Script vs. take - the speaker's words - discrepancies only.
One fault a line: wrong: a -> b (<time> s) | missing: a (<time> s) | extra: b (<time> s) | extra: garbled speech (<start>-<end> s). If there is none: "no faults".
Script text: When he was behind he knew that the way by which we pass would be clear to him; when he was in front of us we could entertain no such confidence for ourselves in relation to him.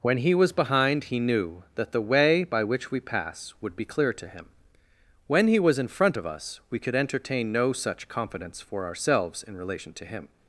no faults